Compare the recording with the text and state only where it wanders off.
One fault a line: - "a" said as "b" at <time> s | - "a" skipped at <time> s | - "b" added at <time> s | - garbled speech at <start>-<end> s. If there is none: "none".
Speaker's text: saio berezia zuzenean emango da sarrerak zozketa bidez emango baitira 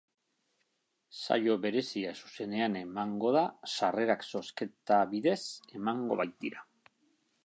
none